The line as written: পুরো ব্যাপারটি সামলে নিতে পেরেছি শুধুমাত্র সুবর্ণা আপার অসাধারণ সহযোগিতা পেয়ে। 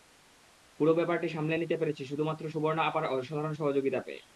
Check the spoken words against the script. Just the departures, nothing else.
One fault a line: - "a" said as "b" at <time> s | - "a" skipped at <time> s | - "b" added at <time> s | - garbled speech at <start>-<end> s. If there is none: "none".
none